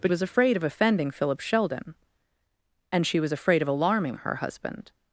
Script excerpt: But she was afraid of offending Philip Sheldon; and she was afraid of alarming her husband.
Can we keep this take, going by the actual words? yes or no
no